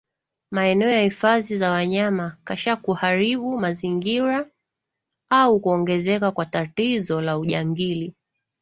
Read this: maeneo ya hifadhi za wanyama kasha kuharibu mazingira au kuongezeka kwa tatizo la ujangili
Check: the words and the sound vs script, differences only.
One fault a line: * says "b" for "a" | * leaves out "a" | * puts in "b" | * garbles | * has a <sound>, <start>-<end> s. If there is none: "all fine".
all fine